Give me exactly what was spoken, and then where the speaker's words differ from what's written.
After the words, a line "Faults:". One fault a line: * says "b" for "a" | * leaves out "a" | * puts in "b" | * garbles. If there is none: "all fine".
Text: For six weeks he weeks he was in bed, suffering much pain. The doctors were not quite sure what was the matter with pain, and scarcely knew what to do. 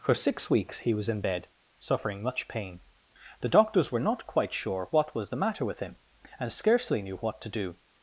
For six weeks he was in bed, suffering much pain. The doctors were not quite sure what was the matter with him, and scarcely knew what to do.
Faults:
* leaves out "weeks he"
* says "him" for "pain"